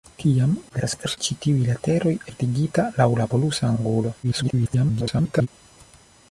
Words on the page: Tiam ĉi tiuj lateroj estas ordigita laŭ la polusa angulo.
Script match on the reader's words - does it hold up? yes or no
no